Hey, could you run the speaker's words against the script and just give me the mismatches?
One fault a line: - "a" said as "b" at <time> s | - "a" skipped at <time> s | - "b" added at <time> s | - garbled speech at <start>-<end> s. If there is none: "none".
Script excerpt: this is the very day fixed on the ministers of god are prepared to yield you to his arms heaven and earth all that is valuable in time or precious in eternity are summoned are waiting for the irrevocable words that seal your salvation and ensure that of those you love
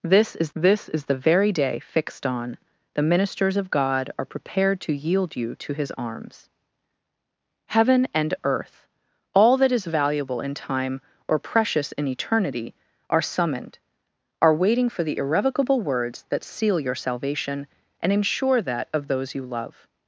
- "this is" added at 0.5 s